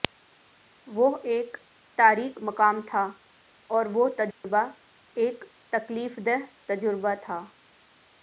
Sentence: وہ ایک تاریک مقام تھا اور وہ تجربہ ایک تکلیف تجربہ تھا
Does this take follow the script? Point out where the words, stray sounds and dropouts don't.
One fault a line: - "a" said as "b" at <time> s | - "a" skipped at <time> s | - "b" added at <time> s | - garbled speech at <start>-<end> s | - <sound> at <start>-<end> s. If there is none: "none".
- dropout at 4.3-4.4 s
- "دہ" added at 6.3 s